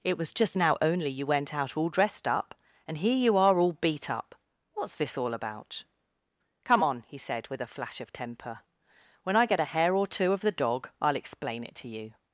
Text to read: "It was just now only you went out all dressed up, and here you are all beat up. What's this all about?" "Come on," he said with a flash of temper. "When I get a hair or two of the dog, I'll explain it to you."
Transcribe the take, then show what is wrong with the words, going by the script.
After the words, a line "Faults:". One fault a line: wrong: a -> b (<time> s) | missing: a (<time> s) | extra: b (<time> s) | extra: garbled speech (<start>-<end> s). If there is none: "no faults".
"It was just now only you went out all dressed up, and here you are all beat up. What's this all about?" "Come on," he said with a flash of temper. "When I get a hair or two of the dog, I'll explain it to you."
Faults:
no faults